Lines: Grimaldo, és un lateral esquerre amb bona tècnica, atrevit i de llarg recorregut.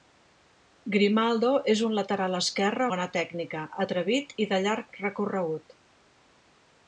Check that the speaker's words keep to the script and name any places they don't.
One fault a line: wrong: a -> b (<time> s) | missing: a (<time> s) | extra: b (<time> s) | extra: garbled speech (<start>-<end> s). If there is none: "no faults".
missing: amb (2.9 s)